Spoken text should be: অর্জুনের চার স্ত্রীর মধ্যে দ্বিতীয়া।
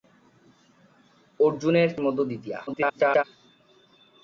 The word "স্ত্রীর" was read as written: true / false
false